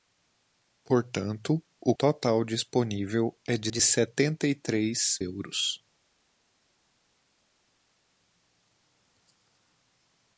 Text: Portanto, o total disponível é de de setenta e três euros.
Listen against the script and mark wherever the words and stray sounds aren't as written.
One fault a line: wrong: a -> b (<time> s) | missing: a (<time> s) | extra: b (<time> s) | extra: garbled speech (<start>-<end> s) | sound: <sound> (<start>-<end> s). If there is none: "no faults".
no faults